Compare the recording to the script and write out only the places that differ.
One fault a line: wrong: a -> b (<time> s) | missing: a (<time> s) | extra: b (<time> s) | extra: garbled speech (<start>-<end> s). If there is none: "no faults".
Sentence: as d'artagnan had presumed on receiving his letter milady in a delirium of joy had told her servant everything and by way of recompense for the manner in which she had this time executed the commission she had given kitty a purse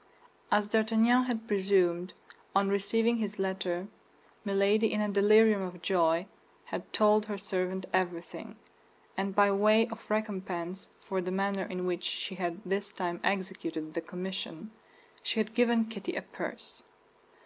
no faults